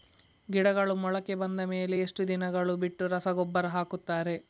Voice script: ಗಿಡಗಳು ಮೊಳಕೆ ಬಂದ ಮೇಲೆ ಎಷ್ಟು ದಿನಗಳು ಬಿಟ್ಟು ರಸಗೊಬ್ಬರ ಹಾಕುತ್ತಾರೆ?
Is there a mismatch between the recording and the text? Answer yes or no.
no